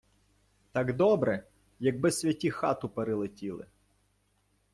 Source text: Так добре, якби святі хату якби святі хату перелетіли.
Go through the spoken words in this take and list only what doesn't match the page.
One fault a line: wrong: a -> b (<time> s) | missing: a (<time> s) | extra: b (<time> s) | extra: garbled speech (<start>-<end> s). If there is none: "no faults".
missing: якби святі хату (2.9 s)